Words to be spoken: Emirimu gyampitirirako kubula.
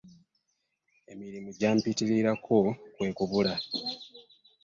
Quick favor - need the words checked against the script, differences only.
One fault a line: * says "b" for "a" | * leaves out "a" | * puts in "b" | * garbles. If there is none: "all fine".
* puts in "kwe"